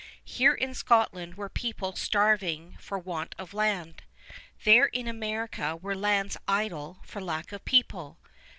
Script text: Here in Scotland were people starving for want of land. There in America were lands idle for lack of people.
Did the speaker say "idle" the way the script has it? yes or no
yes